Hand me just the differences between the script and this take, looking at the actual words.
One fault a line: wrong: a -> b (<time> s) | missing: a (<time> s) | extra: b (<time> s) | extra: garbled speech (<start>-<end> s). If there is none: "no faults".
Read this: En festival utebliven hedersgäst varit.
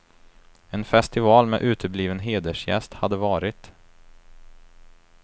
extra: med (1.5 s)
extra: hade (2.9 s)